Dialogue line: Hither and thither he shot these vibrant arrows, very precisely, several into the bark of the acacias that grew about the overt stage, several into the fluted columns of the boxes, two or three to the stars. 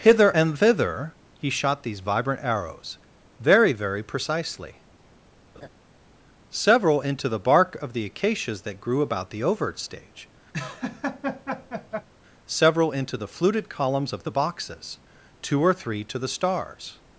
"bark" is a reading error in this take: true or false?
false